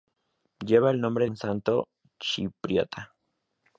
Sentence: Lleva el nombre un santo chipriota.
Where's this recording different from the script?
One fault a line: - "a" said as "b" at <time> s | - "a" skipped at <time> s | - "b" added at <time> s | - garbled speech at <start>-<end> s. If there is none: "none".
none